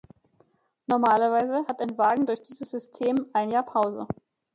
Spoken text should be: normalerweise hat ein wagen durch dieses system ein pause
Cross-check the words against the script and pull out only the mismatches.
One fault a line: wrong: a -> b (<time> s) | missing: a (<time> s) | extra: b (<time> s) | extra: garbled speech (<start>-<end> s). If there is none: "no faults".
extra: jahr (3.5 s)